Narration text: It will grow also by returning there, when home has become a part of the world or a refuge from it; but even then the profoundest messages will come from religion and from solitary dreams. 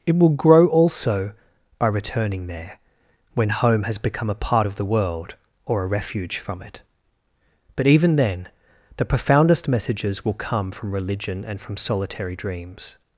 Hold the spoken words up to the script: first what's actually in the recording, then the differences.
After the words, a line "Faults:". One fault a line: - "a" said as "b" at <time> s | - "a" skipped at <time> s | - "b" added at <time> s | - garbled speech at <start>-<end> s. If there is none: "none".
It will grow also by returning there, when home has become a part of the world or a refuge from it; but even then the profoundest messages will come from religion and from solitary dreams.
Faults:
none